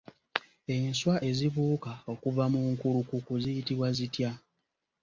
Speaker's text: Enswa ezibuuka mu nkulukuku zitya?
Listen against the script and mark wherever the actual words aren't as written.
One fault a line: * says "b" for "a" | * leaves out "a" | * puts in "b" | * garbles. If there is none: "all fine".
* puts in "okuva"
* puts in "ziyitibwa"